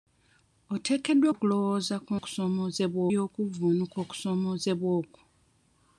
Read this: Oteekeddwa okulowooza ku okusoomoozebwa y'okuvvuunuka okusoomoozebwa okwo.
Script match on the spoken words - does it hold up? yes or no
yes